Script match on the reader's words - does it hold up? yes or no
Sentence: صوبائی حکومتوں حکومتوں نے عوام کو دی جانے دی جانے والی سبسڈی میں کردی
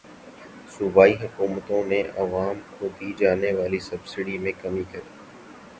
no